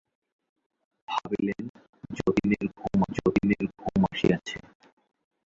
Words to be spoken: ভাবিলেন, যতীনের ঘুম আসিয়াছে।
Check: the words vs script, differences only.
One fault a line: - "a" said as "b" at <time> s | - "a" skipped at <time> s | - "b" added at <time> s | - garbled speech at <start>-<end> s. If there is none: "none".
- "যতীনের ঘুম" added at 3.2 s